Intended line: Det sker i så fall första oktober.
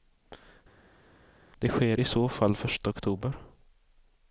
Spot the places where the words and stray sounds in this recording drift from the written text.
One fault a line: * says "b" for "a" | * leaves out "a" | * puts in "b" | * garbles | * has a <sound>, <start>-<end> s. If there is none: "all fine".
all fine